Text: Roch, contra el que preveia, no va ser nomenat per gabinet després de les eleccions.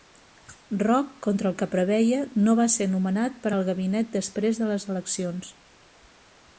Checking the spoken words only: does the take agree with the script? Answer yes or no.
no